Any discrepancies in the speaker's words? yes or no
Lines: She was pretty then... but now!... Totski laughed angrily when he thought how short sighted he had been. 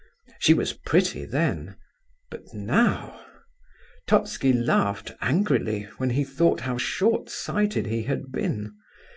no